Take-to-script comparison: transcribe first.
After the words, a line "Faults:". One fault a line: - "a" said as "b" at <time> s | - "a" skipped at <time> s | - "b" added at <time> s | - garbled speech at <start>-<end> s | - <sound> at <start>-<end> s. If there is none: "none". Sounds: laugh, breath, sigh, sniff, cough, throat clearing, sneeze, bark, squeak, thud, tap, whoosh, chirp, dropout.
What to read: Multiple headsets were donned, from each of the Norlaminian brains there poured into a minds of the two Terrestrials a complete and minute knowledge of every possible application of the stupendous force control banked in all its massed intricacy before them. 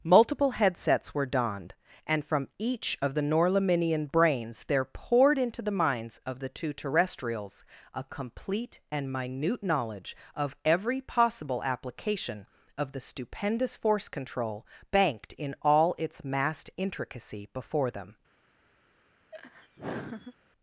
Multiple headsets were donned, and from each of the Norlaminian brains there poured into the minds of the two Terrestrials a complete and minute knowledge of every possible application of the stupendous force control banked in all its massed intricacy before them.
Faults:
- "and" added at 2.1 s
- "a" said as "the" at 5.6 s
- laugh at 19.3-20.3 s